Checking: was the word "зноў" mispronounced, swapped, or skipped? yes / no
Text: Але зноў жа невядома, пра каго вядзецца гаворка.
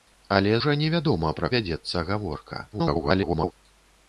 yes